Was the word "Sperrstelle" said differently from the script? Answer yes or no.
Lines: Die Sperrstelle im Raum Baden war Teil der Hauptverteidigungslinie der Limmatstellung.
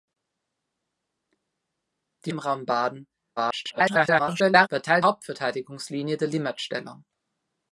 yes